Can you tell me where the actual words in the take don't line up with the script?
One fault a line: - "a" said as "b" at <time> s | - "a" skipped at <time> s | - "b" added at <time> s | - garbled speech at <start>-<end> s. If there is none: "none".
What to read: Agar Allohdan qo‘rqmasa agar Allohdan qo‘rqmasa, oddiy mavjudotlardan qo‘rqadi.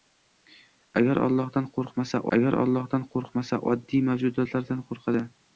none